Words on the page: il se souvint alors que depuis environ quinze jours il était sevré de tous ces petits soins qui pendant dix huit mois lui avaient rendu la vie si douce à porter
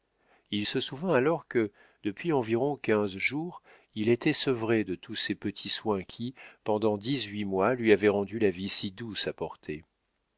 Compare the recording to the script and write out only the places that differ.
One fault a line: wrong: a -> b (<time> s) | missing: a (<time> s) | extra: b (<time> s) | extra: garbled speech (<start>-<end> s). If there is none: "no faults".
no faults